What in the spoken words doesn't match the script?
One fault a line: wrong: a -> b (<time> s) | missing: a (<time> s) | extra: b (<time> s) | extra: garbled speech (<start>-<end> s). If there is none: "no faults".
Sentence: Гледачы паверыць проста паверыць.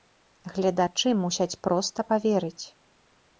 wrong: паверыць -> мусяць (1.2 s)